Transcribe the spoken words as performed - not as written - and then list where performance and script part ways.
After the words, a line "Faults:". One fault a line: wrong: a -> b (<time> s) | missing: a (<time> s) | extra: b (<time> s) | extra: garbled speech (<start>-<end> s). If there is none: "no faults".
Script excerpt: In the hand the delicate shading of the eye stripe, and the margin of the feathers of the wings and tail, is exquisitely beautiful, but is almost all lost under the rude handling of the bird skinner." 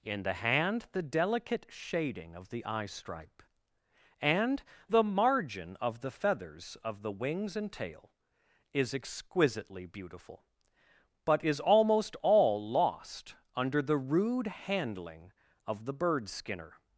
In the hand the delicate shading of the eye stripe, and the margin of the feathers of the wings and tail, is exquisitely beautiful, but is almost all lost under the rude handling of the bird skinner."
Faults:
no faults